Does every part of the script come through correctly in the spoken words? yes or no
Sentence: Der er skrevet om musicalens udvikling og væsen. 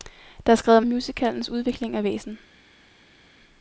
yes